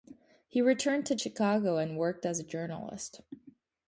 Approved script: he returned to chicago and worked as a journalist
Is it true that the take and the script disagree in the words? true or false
false